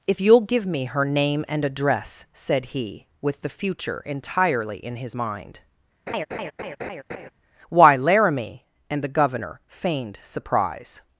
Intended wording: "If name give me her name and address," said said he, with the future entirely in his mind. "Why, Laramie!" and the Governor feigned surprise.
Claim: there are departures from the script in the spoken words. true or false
true